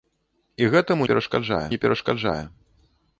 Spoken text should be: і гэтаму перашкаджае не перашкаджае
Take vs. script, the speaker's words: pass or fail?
pass